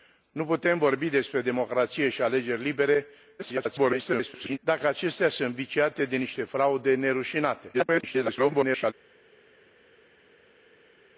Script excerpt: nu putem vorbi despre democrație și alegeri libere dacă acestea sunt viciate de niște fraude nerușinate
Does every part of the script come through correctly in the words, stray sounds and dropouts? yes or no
no